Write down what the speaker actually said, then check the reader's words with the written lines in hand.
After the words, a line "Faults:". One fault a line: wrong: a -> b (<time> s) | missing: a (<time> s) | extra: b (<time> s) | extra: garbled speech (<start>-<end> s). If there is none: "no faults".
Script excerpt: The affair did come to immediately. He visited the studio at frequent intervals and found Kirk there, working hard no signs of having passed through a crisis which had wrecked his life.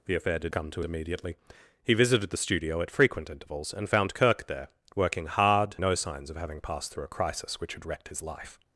The affair did come to immediately. He visited the studio at frequent intervals and found Kirk there, working hard no signs of having passed through a crisis which had wrecked his life.
Faults:
no faults